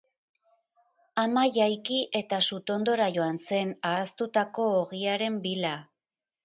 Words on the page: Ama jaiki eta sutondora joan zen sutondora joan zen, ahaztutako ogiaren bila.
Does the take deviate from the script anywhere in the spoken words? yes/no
yes